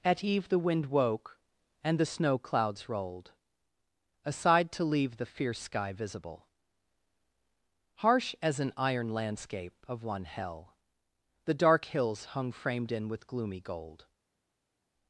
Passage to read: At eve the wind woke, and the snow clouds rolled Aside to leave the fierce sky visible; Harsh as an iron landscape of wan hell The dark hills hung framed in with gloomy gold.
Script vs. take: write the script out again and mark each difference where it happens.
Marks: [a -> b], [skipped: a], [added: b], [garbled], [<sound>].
At eve the wind woke, and the snow clouds rolled Aside to leave the fierce sky visible; Harsh as an iron landscape of [wan -> one] hell The dark hills hung framed in with gloomy gold.